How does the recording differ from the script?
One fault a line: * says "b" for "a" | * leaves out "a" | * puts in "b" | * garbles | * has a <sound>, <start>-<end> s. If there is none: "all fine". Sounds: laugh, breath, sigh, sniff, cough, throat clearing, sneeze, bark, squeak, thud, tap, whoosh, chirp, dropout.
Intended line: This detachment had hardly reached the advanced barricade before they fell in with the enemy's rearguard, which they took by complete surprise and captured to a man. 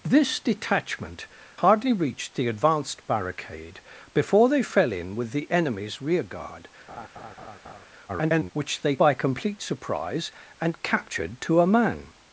* leaves out "had"
* has a laugh, 6.9-7.9 s
* garbles
* leaves out "took"